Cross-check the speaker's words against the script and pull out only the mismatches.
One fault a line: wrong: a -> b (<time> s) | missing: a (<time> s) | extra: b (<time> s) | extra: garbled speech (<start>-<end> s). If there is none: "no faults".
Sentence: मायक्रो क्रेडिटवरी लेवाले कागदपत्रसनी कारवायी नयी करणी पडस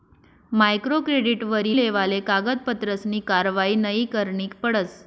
no faults